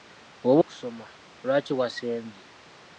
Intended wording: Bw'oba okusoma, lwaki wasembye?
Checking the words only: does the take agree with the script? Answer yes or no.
yes